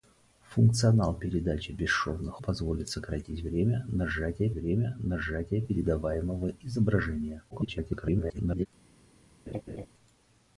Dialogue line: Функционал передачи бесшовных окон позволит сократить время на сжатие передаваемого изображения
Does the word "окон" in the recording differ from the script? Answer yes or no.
yes